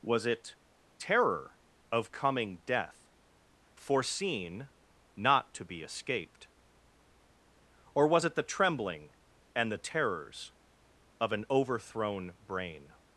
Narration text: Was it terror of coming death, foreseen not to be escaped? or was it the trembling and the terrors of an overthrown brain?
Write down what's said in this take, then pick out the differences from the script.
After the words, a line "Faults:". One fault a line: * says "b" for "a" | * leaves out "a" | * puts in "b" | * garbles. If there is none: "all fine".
Was it terror of coming death, foreseen not to be escaped? or was it the trembling and the terrors of an overthrown brain?
Faults:
all fine